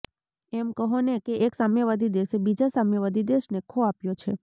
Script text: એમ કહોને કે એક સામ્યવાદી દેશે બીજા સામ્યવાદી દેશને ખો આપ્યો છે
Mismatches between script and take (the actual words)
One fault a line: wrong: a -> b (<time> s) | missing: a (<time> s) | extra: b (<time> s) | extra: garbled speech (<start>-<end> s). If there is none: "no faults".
no faults